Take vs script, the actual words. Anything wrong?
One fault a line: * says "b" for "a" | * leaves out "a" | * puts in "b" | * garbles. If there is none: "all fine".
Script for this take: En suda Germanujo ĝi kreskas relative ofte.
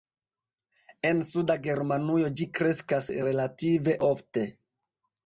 all fine